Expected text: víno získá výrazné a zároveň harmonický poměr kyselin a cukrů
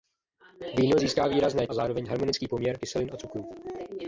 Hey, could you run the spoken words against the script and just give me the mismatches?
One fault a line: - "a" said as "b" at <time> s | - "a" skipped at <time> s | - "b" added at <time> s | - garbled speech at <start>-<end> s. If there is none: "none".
none